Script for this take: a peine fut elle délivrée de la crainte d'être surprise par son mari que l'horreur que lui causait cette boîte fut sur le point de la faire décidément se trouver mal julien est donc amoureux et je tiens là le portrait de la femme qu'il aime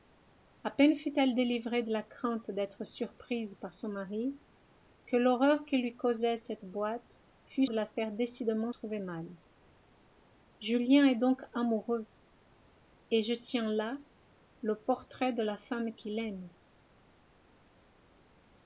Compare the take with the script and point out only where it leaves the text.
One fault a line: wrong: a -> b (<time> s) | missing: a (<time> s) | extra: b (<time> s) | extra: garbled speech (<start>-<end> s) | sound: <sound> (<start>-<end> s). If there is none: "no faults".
missing: sur le point (7.7 s)
missing: se (8.7 s)